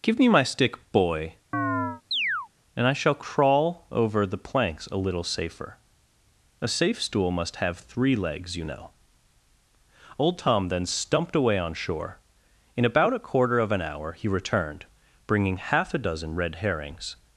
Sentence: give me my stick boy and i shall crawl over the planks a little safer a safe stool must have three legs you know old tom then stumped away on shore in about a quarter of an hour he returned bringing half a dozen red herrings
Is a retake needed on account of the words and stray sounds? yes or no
yes